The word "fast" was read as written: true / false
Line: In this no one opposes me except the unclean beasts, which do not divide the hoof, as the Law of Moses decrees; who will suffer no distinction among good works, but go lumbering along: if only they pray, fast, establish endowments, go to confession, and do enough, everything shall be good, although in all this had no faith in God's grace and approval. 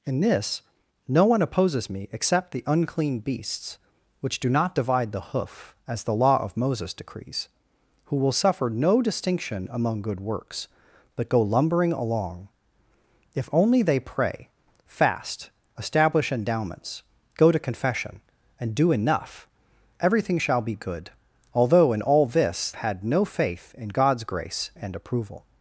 true